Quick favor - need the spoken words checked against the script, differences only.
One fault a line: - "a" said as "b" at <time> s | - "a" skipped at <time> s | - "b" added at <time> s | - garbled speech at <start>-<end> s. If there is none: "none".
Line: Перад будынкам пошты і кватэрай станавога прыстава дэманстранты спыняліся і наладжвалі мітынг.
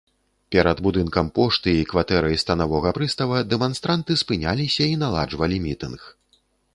none